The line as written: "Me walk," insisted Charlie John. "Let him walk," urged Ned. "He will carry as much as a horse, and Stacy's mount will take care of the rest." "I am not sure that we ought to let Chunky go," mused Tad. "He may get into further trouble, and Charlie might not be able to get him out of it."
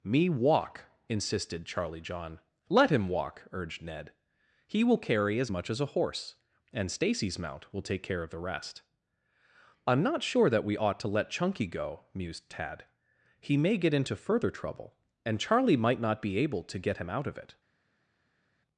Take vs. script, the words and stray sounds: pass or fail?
pass